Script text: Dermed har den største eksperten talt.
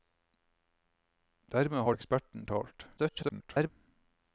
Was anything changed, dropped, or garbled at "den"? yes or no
yes